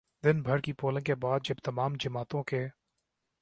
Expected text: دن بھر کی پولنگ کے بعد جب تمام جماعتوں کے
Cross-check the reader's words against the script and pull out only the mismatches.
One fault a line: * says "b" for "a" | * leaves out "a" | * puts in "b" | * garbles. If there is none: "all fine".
all fine